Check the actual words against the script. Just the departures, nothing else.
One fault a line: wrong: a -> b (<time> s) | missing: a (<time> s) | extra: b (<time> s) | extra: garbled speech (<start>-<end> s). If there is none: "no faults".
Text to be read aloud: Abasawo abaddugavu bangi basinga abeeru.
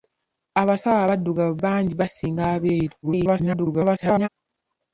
extra: garbled speech (3.0-4.3 s)